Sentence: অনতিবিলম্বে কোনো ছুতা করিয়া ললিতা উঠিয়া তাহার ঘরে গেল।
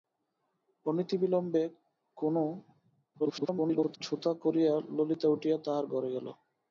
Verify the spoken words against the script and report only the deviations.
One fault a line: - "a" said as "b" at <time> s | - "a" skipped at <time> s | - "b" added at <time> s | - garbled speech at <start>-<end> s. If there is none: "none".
- garbled speech at 3.2-4.0 s